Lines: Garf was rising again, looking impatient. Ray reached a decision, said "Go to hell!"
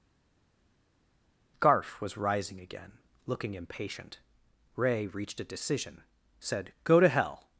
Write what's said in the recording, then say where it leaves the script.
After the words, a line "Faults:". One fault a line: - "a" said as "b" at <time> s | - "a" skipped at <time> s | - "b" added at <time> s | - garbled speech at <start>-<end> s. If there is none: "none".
Garf was rising again, looking impatient. Ray reached a decision, said "Go to hell!"
Faults:
none